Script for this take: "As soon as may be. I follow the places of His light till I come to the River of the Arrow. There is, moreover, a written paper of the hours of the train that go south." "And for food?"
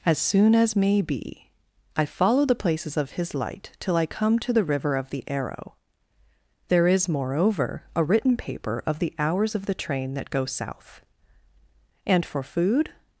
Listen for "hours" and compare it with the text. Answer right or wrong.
right